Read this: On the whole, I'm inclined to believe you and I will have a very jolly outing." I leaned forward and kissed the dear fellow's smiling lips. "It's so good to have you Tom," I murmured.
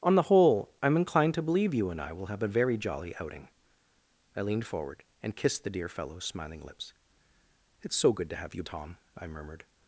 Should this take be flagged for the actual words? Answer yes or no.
no